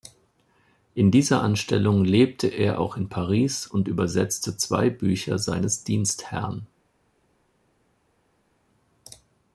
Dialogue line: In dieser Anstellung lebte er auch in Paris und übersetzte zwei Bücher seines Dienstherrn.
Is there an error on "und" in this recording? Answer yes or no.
no